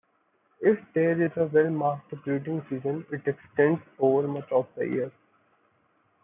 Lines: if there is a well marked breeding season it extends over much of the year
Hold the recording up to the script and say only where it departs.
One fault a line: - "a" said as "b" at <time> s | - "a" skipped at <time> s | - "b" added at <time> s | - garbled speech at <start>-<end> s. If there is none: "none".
none